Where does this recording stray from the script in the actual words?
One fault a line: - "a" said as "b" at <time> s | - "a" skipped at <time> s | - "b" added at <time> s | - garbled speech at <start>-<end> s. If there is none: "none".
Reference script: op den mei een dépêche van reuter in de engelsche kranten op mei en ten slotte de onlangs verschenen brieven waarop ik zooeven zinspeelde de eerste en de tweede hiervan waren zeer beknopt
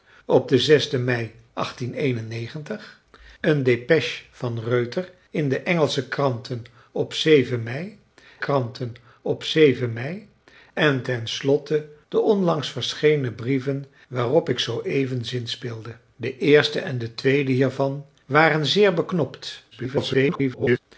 - "kranten op mei" added at 8.4 s
- garbled speech at 19.7-20.8 s